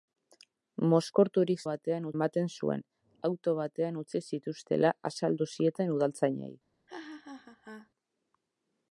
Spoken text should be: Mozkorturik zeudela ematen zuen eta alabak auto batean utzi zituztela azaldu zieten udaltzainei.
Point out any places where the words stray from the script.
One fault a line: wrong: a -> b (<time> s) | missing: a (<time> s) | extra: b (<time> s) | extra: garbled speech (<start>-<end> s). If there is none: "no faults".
wrong: zeudela -> batean (1.7 s)
missing: eta alabak (2.8 s)